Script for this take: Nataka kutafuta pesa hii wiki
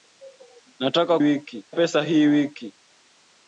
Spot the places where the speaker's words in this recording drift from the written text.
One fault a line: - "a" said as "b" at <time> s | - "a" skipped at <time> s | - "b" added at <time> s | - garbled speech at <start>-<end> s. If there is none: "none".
- "kutafuta" said as "wiki" at 1.2 s